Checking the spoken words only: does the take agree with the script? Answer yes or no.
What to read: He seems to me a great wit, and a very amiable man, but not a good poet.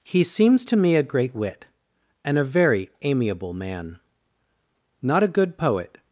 no